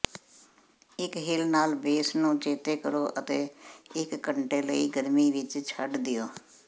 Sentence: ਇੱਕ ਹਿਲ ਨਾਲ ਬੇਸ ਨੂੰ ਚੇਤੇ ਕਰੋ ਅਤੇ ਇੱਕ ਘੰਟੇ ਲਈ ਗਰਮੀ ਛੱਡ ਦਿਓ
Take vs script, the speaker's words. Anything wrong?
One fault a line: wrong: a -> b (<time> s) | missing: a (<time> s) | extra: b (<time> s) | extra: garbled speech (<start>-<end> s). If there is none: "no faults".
extra: ਵਿੱਚ (5.3 s)